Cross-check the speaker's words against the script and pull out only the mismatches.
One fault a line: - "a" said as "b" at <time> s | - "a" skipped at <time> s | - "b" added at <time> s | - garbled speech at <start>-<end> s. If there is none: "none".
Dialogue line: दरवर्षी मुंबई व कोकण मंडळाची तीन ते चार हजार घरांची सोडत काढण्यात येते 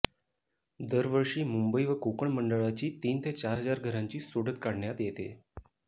none